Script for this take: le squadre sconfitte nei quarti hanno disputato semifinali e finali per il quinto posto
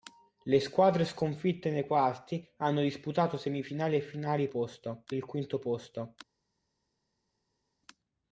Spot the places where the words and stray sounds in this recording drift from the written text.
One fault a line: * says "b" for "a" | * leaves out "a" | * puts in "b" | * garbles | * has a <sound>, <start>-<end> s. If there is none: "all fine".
* says "posto" for "per"